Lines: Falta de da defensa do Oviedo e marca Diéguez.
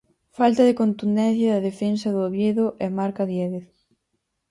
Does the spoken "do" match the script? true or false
true